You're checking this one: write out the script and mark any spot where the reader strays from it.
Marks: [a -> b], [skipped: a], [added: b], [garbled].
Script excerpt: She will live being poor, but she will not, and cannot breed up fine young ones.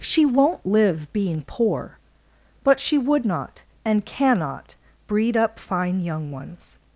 She [will -> won't] live being poor, but she [will -> would] not, and cannot breed up fine young ones.